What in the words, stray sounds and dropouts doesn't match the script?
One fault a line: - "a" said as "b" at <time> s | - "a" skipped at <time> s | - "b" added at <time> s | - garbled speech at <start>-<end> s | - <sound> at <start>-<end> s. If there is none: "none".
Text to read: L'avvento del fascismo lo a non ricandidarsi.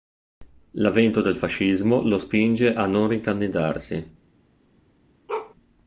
- "spinge" added at 2.2 s
- bark at 5.3-5.5 s